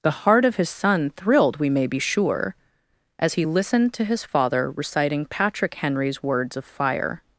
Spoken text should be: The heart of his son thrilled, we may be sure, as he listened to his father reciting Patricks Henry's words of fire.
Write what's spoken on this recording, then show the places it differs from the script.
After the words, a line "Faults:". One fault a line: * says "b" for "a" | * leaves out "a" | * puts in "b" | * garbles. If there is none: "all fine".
The heart of his son thrilled, we may be sure, as he listened to his father reciting Patrick Henry's words of fire.
Faults:
* says "Patrick" for "Patricks"